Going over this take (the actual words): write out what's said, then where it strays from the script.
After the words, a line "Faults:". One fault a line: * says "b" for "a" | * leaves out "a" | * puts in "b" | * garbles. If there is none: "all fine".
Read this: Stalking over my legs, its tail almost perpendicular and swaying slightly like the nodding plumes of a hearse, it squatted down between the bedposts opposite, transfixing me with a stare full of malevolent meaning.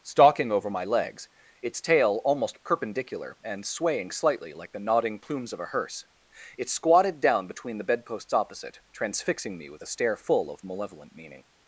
Stalking over my legs, its tail almost perpendicular and swaying slightly like the nodding plumes of a hearse, it squatted down between the bedposts opposite, transfixing me with a stare full of malevolent meaning.
Faults:
all fine